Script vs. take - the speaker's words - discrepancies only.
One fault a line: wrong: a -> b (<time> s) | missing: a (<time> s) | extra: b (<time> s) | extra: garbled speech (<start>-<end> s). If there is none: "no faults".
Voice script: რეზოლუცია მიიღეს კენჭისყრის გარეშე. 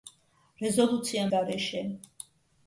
missing: მიიღეს კენჭისყრის (1.2 s)